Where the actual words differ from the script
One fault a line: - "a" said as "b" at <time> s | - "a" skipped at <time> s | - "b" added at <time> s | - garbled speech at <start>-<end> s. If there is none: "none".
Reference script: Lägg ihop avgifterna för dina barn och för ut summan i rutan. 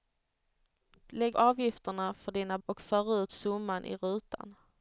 - "ihop" skipped at 1.4 s
- "barn" skipped at 2.6 s